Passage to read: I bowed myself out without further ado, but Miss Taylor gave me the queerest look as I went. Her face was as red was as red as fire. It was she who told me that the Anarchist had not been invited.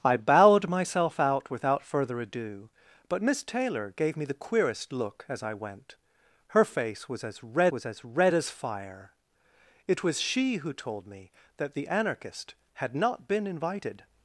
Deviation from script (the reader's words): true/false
false